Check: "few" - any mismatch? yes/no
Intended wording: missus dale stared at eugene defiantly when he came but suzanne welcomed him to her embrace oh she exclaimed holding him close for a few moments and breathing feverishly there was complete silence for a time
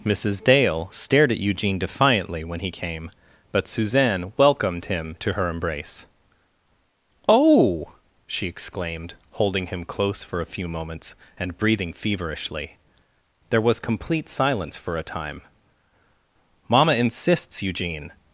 no